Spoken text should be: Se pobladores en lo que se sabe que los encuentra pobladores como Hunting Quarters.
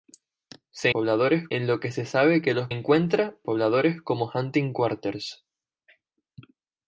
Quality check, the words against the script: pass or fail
pass